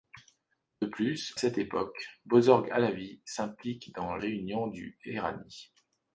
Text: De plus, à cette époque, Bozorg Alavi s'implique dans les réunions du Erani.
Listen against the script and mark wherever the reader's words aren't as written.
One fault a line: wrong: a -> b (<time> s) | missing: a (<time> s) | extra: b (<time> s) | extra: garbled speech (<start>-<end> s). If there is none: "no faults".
missing: à (1.4 s)
missing: les (4.2 s)